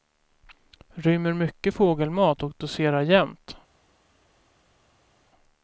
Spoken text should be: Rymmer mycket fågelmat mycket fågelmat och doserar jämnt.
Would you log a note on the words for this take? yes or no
yes